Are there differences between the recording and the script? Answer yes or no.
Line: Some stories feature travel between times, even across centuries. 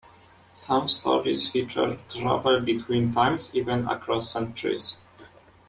no